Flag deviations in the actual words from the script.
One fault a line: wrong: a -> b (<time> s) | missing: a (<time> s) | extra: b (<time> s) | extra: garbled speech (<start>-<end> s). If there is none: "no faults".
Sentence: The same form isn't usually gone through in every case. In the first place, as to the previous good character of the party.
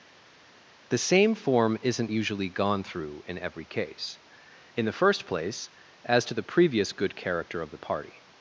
no faults